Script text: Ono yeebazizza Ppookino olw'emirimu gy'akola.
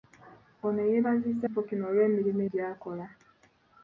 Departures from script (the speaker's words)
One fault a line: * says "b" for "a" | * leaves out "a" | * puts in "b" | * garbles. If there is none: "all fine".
all fine